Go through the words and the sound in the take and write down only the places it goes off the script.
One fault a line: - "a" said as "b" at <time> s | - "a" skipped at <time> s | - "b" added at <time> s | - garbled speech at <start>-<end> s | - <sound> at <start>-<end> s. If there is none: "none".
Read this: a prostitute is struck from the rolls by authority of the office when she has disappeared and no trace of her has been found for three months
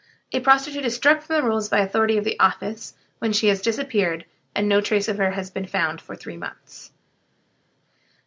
none